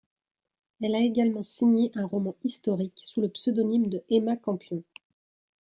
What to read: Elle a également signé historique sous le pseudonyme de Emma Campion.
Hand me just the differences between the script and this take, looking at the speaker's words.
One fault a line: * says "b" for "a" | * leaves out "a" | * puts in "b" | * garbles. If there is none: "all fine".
* puts in "un roman"